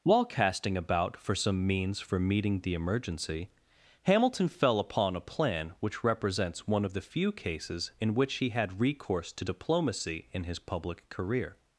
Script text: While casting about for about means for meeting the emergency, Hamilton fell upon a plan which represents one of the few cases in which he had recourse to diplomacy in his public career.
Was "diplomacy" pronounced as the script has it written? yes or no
yes